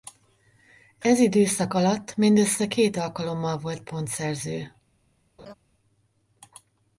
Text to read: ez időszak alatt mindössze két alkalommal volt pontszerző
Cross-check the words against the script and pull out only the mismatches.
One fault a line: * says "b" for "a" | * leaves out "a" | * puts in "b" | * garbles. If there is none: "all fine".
all fine